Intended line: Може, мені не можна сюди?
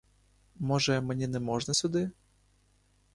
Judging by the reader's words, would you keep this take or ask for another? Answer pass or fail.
pass